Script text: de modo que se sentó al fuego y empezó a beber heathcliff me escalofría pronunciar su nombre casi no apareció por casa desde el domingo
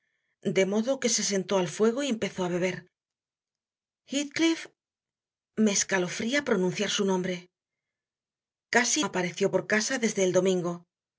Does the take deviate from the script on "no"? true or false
true